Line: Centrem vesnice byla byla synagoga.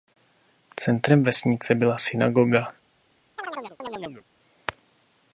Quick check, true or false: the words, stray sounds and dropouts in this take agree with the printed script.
false